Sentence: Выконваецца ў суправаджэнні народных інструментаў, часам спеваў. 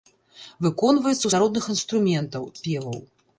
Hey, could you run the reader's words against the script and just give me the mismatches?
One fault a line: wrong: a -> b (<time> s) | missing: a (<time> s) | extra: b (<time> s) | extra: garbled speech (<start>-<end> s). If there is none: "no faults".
missing: суправаджэнні (1.3 s)
missing: часам (2.4 s)